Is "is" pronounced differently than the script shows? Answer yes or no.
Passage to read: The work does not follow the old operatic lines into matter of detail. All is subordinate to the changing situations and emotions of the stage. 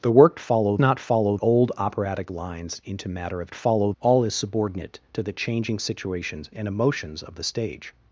no